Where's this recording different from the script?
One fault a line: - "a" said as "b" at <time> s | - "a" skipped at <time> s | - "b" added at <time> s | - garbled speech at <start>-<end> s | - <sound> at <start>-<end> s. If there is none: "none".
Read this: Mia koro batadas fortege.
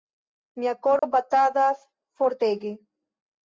- dropout at 1.0-1.0 s